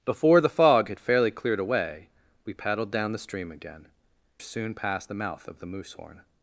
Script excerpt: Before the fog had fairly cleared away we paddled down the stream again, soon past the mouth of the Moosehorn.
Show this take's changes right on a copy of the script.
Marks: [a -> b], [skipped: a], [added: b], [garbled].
Before the fog had fairly cleared away we paddled down the stream again, soon past the mouth of the Moosehorn.